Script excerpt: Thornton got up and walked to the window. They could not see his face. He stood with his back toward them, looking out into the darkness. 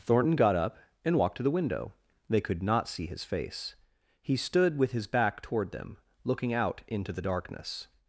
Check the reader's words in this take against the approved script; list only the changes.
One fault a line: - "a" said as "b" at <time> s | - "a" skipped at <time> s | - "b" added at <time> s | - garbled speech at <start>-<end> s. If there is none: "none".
none